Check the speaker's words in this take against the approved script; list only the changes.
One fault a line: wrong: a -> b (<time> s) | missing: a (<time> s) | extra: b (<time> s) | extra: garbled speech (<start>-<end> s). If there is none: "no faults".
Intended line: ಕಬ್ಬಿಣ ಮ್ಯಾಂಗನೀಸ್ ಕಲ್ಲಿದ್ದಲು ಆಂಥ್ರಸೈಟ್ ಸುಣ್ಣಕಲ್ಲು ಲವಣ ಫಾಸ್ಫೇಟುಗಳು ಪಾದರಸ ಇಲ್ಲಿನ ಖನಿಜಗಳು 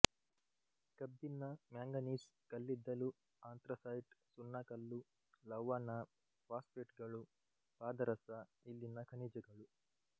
no faults